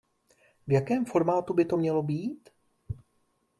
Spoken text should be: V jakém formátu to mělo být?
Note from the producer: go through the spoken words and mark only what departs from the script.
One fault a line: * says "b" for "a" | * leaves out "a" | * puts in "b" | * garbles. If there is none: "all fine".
* puts in "by"